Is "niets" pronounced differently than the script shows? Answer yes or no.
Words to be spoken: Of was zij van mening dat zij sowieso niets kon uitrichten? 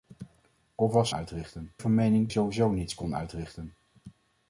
no